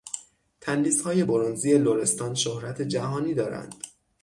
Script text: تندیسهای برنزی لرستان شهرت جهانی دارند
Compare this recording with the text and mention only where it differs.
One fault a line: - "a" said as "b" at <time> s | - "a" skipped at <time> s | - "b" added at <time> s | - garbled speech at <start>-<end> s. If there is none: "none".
none